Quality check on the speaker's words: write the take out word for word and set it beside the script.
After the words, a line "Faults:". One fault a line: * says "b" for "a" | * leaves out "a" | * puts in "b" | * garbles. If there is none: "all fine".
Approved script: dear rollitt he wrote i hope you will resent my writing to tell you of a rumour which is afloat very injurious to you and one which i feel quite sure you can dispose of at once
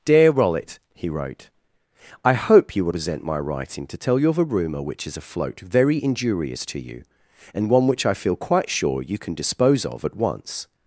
dear rollitt he wrote i hope you will resent my writing to tell you of a rumour which is afloat very injurious to you and one which i feel quite sure you can dispose of at once
Faults:
all fine